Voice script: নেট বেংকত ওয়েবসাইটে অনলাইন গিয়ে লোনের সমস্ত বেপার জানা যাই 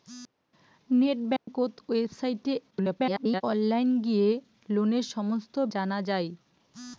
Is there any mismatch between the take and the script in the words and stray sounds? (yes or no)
yes